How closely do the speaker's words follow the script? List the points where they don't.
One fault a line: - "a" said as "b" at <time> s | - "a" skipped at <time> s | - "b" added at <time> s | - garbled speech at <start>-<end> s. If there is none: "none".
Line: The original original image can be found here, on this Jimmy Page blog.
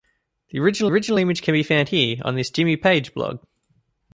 none